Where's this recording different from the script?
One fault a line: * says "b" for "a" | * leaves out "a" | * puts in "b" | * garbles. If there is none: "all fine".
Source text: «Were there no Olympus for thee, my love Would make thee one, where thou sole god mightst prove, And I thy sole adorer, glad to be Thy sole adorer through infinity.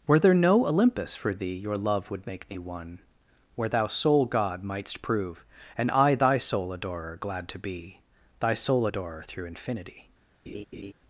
* says "your" for "my"